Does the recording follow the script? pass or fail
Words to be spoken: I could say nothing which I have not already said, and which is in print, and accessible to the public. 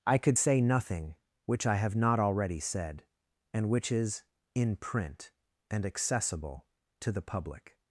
pass